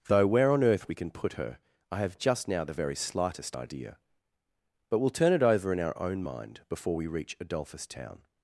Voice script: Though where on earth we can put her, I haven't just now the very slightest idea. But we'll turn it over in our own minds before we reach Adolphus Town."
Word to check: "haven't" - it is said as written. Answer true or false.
false